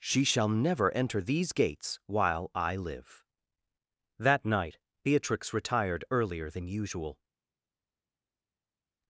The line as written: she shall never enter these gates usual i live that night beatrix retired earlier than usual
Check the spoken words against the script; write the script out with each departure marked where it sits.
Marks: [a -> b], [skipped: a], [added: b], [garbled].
she shall never enter these gates [usual -> while] i live that night beatrix retired earlier than usual